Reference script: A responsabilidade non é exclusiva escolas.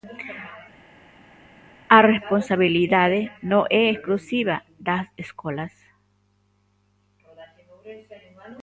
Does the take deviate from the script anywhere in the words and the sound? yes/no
yes